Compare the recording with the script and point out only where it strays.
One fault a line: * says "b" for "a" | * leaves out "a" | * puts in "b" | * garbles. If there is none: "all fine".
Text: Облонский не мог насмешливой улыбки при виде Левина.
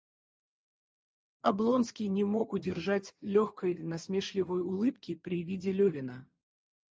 * puts in "удержать легкой"